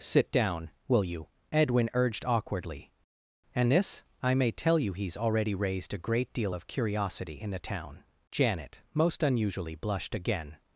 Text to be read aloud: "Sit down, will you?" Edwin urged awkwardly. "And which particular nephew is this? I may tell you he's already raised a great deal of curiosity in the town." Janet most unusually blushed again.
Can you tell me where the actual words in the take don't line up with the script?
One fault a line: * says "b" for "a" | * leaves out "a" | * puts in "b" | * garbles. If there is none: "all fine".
* leaves out "which particular nephew is"